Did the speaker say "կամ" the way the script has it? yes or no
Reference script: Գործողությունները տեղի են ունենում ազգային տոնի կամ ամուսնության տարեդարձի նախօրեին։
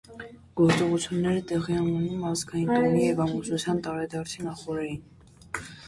no